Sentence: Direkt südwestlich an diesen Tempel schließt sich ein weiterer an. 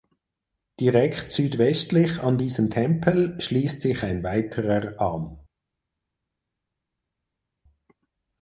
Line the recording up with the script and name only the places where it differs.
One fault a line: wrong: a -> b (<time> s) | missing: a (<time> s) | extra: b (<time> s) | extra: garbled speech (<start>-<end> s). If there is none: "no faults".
no faults